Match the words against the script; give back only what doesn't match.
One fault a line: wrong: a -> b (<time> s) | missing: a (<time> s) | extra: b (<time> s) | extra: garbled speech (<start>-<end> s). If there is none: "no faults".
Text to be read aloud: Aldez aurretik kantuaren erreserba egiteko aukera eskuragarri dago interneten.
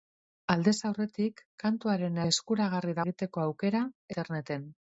wrong: erreserba -> eskuragarri (2.3 s)
missing: eskuragarri dago (3.9 s)